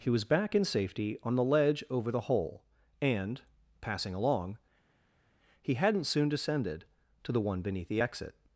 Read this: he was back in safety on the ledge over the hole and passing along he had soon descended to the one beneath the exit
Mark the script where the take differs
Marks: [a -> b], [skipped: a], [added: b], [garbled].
he was back in safety on the ledge over the hole and passing along he [had -> hadn't] soon descended to the one beneath the exit